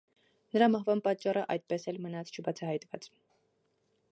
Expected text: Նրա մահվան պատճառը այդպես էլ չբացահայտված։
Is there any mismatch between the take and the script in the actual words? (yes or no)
yes